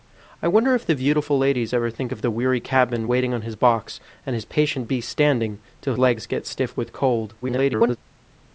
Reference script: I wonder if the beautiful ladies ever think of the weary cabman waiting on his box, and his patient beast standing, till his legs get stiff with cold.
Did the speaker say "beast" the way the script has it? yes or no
yes